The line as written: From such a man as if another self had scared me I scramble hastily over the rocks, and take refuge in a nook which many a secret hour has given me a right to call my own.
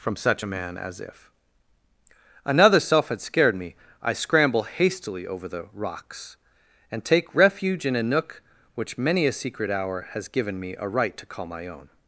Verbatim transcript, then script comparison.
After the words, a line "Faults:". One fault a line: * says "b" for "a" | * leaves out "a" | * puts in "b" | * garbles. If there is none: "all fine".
From such a man as if another self had scared me I scramble hastily over the rocks, and take refuge in a nook which many a secret hour has given me a right to call my own.
Faults:
all fine